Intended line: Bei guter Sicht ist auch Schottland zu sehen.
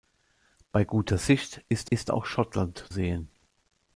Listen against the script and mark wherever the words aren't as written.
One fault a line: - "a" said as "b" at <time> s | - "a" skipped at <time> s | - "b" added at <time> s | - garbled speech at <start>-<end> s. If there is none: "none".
- "ist" added at 1.9 s
- "zu" skipped at 2.8 s